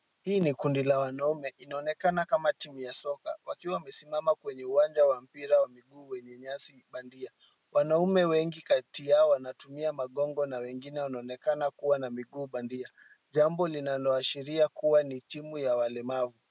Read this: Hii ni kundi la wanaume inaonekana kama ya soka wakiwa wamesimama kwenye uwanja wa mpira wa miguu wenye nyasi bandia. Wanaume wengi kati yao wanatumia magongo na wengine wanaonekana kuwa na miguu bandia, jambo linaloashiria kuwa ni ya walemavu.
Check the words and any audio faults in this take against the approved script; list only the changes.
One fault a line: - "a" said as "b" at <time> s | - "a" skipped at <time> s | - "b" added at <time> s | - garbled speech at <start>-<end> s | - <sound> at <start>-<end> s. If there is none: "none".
- "timu" added at 2.5 s
- "timu" added at 15.2 s